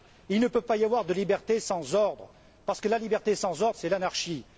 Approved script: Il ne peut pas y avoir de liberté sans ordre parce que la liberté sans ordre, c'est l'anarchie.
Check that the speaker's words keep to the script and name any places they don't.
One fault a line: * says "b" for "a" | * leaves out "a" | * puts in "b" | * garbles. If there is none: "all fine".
all fine